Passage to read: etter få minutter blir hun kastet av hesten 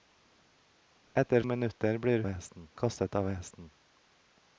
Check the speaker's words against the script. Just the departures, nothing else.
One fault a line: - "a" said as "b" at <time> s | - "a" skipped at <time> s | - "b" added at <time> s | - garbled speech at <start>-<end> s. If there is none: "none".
- "få" skipped at 1.4 s
- "hun" said as "hesten" at 2.3 s